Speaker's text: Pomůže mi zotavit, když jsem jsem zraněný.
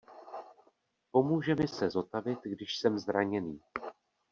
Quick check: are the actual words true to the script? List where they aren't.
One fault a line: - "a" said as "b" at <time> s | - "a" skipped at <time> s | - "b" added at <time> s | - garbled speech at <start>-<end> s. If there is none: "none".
- "se" added at 1.7 s
- "jsem" skipped at 3.0 s